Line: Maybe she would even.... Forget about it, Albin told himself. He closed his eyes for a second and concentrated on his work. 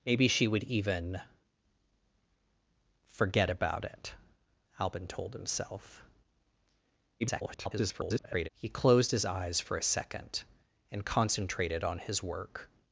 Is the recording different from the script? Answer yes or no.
yes